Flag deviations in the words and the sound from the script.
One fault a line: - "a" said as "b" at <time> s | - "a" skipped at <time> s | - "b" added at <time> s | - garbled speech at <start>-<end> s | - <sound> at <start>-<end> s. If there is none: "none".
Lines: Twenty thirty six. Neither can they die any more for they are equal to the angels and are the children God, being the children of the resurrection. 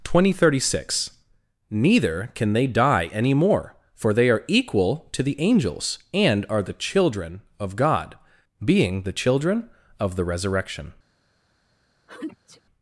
- "of" added at 7.6 s
- sneeze at 12.1-12.6 s